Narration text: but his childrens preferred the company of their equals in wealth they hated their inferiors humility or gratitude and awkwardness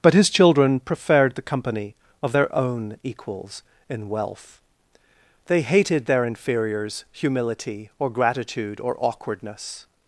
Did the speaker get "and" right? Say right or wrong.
wrong